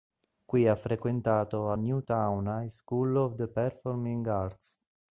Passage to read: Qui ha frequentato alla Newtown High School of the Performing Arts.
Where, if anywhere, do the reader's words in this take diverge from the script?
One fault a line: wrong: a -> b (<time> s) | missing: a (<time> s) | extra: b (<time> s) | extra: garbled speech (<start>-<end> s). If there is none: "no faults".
missing: alla (1.7 s)